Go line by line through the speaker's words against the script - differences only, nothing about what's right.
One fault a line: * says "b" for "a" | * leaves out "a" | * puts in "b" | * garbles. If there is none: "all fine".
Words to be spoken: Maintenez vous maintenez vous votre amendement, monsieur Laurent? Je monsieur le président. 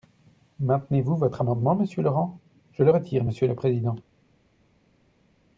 * leaves out "maintenez vous"
* puts in "le retire"